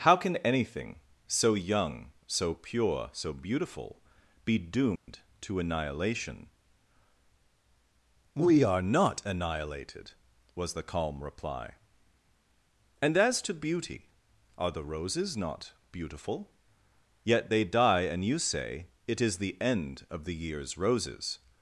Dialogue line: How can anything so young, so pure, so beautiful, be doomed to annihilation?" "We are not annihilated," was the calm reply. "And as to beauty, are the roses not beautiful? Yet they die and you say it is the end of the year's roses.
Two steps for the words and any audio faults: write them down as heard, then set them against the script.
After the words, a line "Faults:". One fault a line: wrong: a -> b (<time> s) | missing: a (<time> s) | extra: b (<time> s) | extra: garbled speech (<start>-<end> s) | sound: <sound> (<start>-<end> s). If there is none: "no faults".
How can anything so young, so pure, so beautiful, be doomed to annihilation?" "We are not annihilated," was the calm reply. "And as to beauty, are the roses not beautiful? Yet they die and you say it is the end of the year's roses.
Faults:
sound: dropout (5.0-5.1 s)